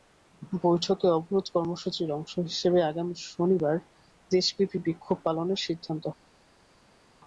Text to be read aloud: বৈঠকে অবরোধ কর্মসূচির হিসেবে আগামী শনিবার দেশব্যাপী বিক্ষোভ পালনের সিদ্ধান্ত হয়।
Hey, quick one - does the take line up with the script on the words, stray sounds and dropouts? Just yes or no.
no